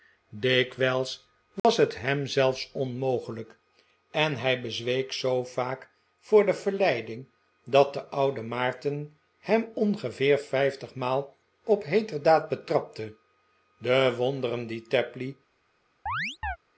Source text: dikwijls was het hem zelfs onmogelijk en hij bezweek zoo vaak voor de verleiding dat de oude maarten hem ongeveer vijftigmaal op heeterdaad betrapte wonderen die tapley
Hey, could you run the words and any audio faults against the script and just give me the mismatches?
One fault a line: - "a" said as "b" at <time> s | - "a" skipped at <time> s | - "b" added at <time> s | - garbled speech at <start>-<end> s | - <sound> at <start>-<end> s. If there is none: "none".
- dropout at 1.6-1.6 s
- "de" added at 13.8 s
- chirp at 16.1-16.6 s